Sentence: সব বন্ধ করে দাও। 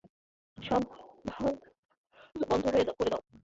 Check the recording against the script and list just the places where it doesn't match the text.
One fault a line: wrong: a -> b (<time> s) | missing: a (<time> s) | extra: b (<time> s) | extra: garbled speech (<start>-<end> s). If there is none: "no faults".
no faults